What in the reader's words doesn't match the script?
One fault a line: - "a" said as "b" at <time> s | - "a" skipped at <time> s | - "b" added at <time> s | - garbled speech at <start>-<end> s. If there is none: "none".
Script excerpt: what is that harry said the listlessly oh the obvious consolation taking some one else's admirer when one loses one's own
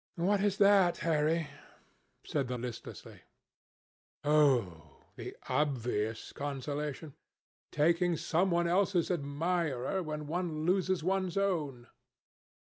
none